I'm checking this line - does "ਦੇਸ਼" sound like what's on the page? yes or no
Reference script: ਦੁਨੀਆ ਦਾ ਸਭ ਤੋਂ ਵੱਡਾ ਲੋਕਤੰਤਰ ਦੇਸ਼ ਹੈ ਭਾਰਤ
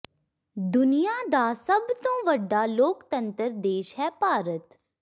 yes